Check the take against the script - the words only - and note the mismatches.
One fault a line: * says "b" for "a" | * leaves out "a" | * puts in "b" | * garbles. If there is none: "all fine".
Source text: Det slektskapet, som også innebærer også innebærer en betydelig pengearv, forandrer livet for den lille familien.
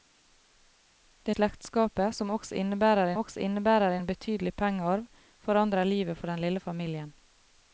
all fine